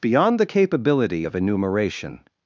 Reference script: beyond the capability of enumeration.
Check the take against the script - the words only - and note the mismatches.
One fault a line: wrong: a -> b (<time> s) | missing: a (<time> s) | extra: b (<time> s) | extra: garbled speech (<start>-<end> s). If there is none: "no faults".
no faults